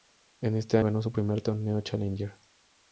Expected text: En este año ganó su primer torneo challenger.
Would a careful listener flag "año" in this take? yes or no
yes